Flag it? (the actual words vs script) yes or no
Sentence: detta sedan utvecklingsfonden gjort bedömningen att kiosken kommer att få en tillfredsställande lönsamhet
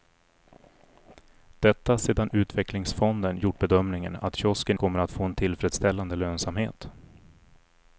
no